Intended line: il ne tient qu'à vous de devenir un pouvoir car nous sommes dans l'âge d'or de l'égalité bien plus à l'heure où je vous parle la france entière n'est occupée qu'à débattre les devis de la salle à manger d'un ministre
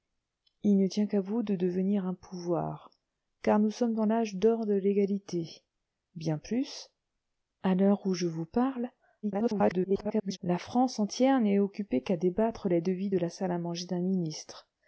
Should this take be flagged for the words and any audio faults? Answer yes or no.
yes